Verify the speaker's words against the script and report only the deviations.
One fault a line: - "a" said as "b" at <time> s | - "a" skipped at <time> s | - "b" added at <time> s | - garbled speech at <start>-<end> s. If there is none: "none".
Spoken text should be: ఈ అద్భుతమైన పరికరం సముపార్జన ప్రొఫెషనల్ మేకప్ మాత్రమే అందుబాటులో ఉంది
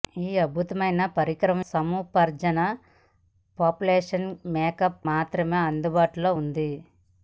none